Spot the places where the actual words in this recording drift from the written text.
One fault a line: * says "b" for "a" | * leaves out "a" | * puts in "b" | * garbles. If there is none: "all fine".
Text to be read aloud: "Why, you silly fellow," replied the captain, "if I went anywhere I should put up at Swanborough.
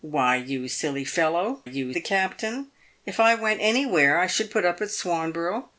* says "you" for "replied"